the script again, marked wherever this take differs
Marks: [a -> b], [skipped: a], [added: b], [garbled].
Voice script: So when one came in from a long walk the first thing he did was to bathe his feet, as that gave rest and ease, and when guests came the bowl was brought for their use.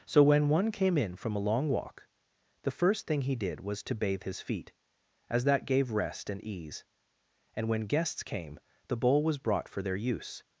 So when one came in from a long walk the first thing he did was to bathe his feet, as that gave rest and ease, and when guests came the bowl was brought for their use.